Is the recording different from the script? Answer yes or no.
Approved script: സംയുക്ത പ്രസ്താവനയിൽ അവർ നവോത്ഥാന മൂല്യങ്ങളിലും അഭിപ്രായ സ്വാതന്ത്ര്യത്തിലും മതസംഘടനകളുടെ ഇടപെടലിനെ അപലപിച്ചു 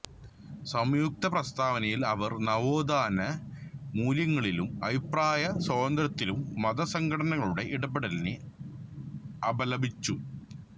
no